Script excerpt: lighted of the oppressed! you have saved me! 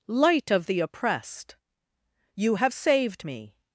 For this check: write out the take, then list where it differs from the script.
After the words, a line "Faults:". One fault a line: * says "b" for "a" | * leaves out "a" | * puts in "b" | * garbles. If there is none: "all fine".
light of the oppressed! you have saved me!
Faults:
* says "light" for "lighted"